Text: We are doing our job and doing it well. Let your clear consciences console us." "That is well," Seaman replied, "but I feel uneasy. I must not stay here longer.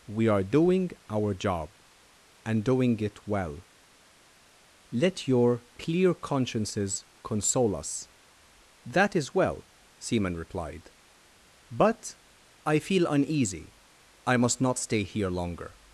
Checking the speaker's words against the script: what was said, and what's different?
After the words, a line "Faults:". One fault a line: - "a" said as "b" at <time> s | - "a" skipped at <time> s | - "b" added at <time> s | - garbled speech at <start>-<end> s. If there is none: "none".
We are doing our job and doing it well. Let your clear consciences console us." "That is well," Seaman replied, "but I feel uneasy. I must not stay here longer.
Faults:
none